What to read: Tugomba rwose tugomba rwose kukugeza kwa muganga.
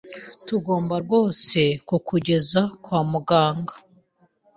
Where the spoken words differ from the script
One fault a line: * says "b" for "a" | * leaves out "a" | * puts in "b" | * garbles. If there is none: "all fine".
* leaves out "tugomba rwose"